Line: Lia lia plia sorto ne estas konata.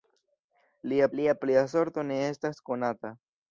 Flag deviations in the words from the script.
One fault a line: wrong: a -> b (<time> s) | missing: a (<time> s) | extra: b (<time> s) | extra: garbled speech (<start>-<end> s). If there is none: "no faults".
no faults